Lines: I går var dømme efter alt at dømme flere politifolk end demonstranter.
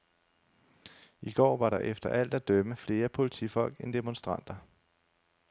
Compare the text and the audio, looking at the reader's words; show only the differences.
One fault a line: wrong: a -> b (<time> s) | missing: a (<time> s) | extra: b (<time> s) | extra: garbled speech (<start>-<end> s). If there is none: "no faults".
wrong: dømme -> der (1.7 s)